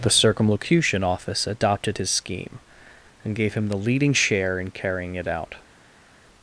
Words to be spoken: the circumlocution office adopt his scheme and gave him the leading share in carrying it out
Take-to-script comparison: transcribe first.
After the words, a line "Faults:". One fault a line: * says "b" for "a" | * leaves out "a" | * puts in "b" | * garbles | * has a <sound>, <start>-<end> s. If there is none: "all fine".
the circumlocution office adopted his scheme and gave him the leading share in carrying it out
Faults:
* says "adopted" for "adopt"